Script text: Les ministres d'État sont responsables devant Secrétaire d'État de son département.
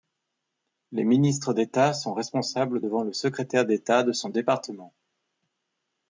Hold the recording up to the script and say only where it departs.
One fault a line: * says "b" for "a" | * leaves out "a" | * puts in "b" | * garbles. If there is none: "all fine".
* puts in "le"